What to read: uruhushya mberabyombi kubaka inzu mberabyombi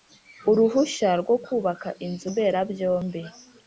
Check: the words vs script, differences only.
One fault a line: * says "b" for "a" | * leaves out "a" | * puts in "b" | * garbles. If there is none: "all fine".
* says "rwo" for "mberabyombi"